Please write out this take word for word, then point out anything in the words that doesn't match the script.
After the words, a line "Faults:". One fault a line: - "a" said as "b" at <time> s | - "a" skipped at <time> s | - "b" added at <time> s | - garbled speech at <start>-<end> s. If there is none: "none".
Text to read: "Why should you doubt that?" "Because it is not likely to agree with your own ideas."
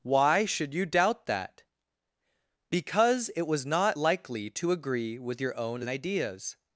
"Why should you doubt that?" "Because it was not likely to agree with your own ideas."
Faults:
- "is" said as "was" at 3.4 s